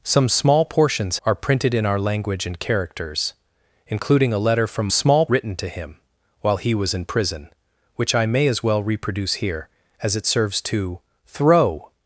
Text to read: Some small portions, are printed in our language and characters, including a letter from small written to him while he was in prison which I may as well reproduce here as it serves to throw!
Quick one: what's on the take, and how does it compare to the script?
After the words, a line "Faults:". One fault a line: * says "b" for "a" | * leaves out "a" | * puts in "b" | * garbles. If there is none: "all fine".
Some small portions, are printed in our language and characters, including a letter from small written to him while he was in prison which I may as well reproduce here as it serves to throw!
Faults:
all fine